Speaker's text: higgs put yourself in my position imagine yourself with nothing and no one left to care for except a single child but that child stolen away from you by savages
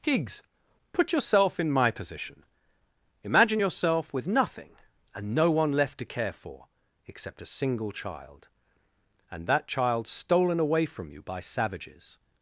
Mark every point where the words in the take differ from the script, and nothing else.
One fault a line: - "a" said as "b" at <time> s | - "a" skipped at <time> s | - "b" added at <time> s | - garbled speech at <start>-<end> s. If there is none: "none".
- "but" said as "and" at 9.3 s